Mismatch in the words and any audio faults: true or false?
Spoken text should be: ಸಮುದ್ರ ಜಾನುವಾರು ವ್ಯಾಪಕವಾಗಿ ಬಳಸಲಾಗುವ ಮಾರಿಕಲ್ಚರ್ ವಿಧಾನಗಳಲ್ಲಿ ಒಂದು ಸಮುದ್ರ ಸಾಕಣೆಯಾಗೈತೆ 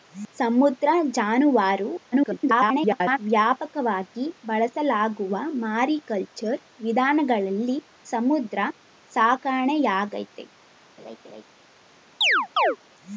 true